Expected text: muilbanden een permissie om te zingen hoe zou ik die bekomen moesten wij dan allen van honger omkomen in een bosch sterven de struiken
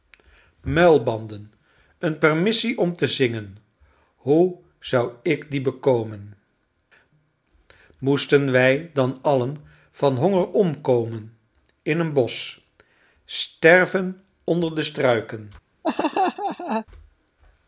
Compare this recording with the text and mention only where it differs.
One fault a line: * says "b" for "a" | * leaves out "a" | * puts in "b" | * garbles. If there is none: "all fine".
* puts in "onder"